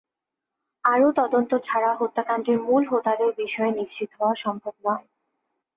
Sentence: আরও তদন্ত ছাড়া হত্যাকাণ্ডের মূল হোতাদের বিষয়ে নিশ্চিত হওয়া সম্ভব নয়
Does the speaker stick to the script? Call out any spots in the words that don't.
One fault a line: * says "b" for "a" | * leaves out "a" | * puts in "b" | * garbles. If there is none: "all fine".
all fine